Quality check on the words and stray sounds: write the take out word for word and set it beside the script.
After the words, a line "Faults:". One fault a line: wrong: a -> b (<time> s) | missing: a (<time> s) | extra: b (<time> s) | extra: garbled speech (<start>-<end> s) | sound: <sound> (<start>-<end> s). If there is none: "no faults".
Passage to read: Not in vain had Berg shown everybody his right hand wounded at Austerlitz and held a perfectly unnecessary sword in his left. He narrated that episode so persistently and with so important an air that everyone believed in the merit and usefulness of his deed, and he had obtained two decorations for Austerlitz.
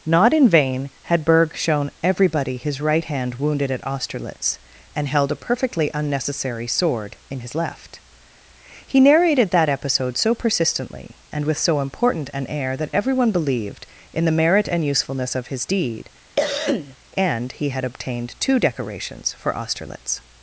Not in vain had Berg shown everybody his right hand wounded at Austerlitz and held a perfectly unnecessary sword in his left. He narrated that episode so persistently and with so important an air that everyone believed in the merit and usefulness of his deed, and he had obtained two decorations for Austerlitz.
Faults:
sound: cough (16.4-17.0 s)